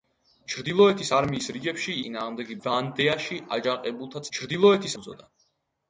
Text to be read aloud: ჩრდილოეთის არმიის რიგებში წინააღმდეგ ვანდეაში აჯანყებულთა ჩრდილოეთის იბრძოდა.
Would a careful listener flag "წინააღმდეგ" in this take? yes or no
no